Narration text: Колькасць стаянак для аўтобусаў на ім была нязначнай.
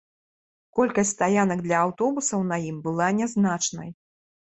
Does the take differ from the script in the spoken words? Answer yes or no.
no